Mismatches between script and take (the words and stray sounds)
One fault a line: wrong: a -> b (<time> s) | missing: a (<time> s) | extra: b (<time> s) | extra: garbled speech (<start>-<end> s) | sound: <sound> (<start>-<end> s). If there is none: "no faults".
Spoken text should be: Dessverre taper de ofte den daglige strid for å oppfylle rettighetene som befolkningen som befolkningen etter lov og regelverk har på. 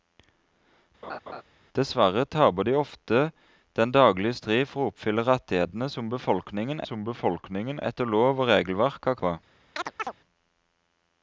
sound: laugh (1.0-1.4 s)
sound: chirp (9.8-10.1 s)